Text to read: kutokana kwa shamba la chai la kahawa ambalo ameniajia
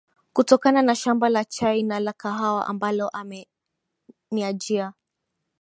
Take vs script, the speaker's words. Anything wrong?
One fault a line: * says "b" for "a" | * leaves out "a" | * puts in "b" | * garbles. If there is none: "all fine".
* says "na" for "kwa"
* puts in "na"